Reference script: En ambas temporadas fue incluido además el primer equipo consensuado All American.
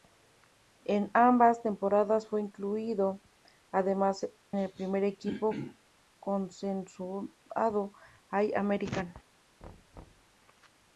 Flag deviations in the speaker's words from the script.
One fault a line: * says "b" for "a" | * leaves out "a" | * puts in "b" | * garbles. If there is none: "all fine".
all fine